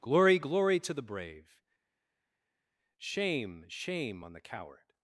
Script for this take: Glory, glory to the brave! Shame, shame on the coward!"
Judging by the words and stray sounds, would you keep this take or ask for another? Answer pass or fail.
pass